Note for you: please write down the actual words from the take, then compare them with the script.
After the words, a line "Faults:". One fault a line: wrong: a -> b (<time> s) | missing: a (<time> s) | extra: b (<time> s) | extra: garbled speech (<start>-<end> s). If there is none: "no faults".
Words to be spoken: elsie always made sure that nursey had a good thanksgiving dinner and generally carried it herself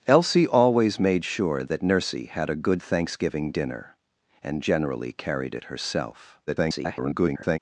elsie always made sure that nursey had a good thanksgiving dinner and generally carried it herself [garbled]
Faults:
extra: garbled speech (6.5-7.6 s)